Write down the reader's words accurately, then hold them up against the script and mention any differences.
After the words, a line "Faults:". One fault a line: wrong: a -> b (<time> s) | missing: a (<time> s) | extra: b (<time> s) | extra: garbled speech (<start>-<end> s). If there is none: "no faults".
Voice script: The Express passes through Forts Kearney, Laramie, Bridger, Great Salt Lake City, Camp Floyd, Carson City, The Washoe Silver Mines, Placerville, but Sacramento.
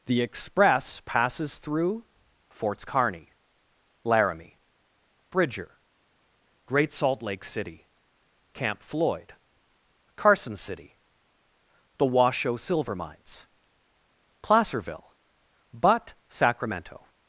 The Express passes through Forts Kearney, Laramie, Bridger, Great Salt Lake City, Camp Floyd, Carson City, The Washoe Silver Mines, Placerville, but Sacramento.
Faults:
no faults